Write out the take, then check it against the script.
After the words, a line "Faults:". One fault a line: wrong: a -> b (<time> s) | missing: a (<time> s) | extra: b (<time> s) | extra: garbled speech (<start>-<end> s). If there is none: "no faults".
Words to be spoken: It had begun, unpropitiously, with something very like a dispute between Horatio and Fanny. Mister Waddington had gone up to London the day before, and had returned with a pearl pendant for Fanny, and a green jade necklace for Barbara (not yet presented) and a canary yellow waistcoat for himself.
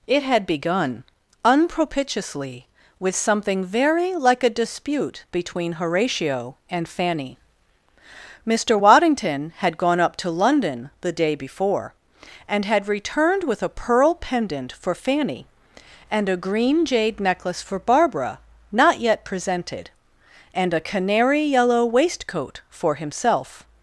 It had begun, unpropitiously, with something very like a dispute between Horatio and Fanny. Mister Waddington had gone up to London the day before, and had returned with a pearl pendant for Fanny, and a green jade necklace for Barbara (not yet presented) and a canary yellow waistcoat for himself.
Faults:
no faults